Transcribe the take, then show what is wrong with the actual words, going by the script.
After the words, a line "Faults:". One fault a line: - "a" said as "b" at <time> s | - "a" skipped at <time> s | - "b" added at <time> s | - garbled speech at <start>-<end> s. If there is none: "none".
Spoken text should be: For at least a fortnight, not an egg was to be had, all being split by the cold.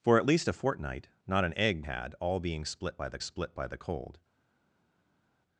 For at least a fortnight, not an egg had, all being split by the split by the cold.
Faults:
- "was to be had all being" said as "had all being split by the" at 1.8 s